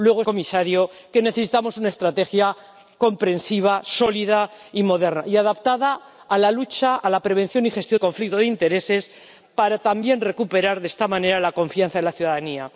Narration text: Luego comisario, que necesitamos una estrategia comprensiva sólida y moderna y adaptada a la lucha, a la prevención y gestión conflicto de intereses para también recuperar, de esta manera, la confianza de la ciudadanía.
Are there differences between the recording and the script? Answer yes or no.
no